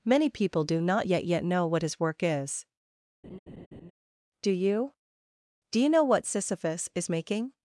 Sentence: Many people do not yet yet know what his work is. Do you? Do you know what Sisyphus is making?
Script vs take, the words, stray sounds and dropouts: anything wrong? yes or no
yes